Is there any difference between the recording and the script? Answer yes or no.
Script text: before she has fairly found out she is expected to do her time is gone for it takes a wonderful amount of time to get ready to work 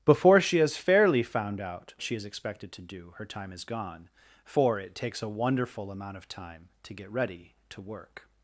no